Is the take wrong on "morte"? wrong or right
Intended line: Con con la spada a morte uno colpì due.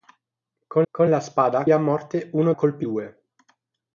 right